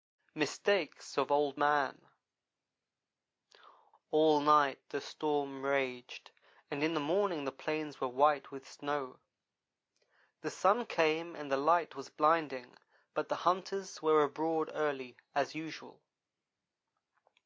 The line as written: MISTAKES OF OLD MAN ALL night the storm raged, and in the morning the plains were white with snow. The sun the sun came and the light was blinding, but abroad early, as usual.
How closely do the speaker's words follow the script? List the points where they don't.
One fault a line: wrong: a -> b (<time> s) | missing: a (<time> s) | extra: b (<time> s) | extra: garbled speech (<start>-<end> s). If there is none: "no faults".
missing: the sun (10.8 s)
extra: the hunters were (13.3 s)